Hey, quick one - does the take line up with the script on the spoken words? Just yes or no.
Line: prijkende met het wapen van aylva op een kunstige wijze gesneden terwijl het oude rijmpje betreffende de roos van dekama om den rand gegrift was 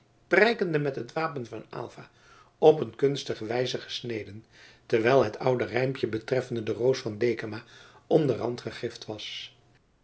yes